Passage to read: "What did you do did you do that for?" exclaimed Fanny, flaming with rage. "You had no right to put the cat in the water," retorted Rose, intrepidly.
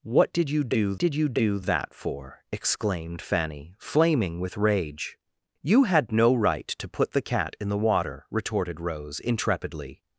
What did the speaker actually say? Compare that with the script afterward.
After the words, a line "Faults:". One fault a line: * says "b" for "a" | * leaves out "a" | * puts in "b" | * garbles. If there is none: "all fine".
"What did you do did you do that for?" exclaimed Fanny, flaming with rage. "You had no right to put the cat in the water," retorted Rose, intrepidly.
Faults:
all fine